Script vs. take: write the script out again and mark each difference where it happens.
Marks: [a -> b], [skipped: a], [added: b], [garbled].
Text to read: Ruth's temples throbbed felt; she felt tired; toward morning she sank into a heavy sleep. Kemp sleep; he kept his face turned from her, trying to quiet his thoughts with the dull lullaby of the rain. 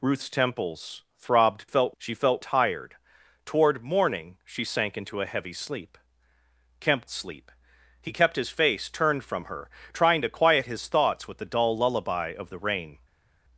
Ruth's temples throbbed felt; she felt tired; toward morning she sank into a heavy sleep. Kemp sleep; he kept his face turned from her, trying to quiet his thoughts with the dull lullaby of the rain.